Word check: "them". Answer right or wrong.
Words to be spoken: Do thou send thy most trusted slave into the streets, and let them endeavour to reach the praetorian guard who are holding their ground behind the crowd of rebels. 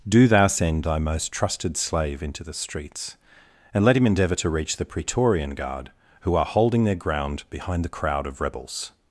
wrong